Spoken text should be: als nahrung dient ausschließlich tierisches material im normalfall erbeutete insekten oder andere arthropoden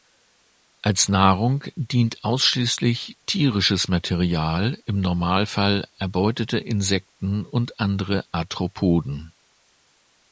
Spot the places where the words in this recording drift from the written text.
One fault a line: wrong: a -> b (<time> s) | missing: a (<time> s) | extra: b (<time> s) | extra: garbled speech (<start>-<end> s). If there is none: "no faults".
wrong: oder -> und (7.5 s)